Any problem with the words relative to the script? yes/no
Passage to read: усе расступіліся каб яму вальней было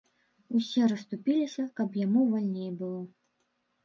no